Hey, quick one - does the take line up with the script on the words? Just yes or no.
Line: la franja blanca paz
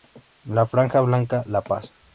no